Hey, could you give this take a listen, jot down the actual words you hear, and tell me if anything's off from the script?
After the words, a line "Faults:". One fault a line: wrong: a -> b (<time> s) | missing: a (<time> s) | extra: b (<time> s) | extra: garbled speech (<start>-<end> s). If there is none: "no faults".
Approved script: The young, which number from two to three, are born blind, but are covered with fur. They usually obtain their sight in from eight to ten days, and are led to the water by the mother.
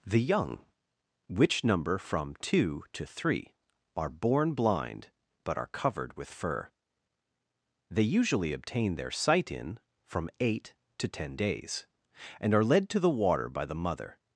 The young, which number from two to three, are born blind, but are covered with fur. They usually obtain their sight in from eight to ten days, and are led to the water by the mother.
Faults:
no faults